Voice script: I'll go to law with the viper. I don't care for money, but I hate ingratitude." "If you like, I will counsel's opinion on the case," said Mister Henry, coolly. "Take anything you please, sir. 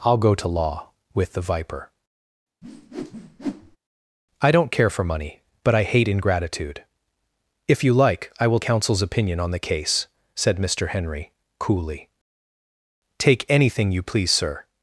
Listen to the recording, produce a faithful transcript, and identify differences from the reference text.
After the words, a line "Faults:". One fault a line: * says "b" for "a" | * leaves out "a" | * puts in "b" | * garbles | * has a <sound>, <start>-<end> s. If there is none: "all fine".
I'll go to law with the viper. I don't care for money, but I hate ingratitude." "If you like, I will counsel's opinion on the case," said Mister Henry, coolly. "Take anything you please, sir.
Faults:
* has a whoosh, 2.6-3.8 s